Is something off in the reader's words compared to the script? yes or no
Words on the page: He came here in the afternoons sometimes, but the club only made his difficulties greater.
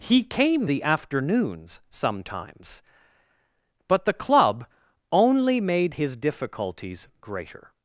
yes